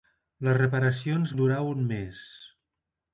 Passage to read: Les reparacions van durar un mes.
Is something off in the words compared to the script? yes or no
yes